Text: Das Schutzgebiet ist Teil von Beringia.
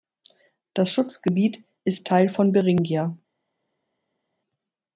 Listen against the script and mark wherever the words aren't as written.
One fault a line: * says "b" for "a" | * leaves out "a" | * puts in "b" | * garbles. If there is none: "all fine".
all fine